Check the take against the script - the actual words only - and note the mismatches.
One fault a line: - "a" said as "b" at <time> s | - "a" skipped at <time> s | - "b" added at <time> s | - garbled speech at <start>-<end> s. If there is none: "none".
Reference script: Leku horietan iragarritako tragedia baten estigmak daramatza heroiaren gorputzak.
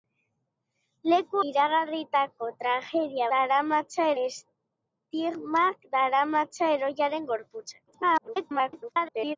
- "horietan" skipped at 1.4 s
- "baten" said as "daramatza" at 3.4 s
- garbled speech at 7.9-9.4 s